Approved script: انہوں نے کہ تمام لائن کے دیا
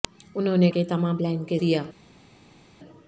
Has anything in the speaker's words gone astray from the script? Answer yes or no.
no